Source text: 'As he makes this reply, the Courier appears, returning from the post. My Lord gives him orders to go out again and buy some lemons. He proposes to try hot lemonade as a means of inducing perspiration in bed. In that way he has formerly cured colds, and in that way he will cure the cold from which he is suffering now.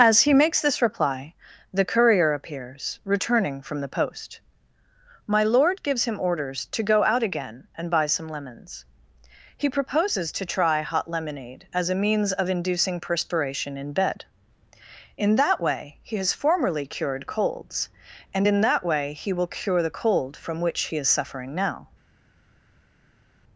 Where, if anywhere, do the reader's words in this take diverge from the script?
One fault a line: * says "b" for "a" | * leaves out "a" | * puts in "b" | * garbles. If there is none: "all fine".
all fine